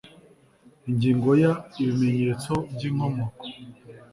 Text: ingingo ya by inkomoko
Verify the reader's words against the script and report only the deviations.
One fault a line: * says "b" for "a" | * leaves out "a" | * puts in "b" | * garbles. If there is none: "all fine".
* puts in "ibimenyetso"